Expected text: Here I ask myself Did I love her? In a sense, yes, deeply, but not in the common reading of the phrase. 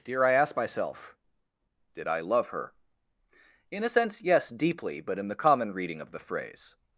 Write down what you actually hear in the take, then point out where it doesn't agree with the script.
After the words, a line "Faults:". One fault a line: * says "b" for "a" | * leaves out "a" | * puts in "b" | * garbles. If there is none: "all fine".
Here I ask myself Did I love her? In a sense, yes, deeply, but in the common reading of the phrase.
Faults:
* leaves out "not"